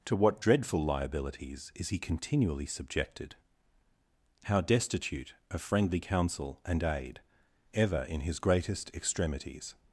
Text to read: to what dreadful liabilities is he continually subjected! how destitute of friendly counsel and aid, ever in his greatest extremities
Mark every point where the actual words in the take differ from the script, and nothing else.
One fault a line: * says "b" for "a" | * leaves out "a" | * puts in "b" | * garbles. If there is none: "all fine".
all fine